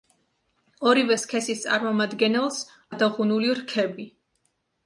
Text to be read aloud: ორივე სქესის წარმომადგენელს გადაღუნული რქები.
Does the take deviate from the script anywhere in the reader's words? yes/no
no